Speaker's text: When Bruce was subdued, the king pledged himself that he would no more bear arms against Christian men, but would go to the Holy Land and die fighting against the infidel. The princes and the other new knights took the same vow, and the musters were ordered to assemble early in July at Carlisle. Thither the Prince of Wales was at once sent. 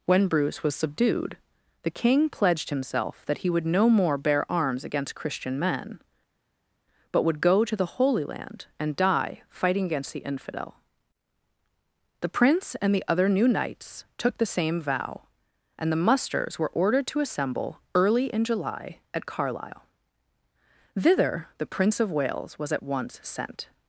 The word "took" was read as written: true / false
true